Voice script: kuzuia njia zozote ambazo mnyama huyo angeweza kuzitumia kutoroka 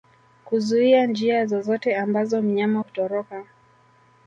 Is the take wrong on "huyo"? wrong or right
wrong